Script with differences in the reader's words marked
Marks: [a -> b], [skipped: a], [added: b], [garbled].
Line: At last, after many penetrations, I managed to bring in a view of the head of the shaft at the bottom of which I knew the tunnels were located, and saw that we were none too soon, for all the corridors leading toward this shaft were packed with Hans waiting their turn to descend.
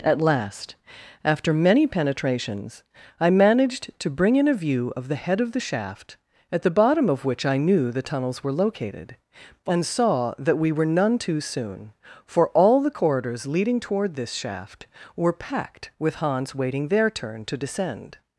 At last, after many penetrations, I managed to bring in a view of the head of the shaft at the bottom of which I knew the tunnels were located, and saw that we were none too soon, for all the corridors leading toward this shaft were packed with Hans waiting their turn to descend.